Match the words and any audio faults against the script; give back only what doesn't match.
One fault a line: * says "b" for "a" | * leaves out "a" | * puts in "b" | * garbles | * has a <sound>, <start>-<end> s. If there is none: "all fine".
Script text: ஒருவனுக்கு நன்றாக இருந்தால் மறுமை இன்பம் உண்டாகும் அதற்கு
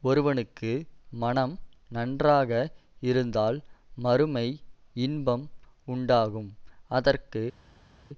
* puts in "மனம்"